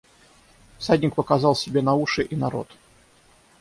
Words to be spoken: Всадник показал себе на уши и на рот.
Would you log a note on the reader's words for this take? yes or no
no